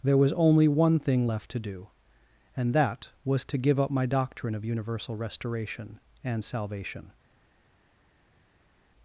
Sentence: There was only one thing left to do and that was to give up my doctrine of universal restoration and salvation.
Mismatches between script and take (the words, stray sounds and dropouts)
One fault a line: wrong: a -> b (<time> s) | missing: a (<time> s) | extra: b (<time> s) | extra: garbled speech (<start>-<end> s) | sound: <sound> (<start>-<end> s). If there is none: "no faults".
no faults